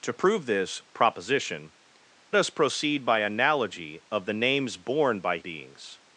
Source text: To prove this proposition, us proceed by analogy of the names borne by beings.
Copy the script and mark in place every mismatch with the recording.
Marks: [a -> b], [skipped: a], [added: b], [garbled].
To prove this proposition, us proceed by analogy of the names borne by beings.